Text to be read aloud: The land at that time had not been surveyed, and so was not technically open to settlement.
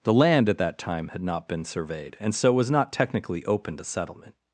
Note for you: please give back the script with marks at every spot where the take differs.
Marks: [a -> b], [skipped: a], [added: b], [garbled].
The land at that time had not been surveyed, and so was not technically open to settlement.